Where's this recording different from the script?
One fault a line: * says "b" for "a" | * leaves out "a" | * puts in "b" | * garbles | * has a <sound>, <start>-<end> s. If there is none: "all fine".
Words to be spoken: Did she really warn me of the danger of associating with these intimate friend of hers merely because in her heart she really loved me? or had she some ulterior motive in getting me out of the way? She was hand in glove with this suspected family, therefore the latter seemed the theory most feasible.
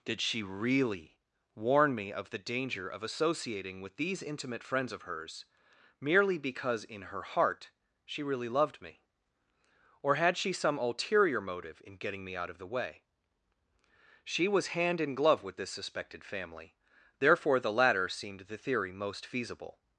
* says "friends" for "friend"